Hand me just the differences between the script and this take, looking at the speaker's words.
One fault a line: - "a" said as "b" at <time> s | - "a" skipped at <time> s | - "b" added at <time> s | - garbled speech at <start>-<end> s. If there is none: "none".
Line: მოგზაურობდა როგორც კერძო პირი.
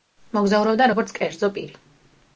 none